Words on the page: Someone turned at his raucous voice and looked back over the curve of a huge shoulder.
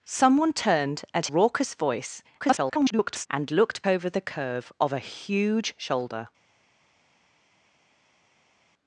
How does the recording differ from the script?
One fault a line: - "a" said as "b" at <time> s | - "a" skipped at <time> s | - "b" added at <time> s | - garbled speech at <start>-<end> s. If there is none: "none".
- "his" skipped at 1.3 s
- garbled speech at 2.4-3.3 s
- "back" skipped at 3.8 s